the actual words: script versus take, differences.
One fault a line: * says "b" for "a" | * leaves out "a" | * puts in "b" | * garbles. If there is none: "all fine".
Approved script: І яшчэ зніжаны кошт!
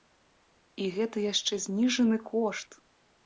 * puts in "гэта"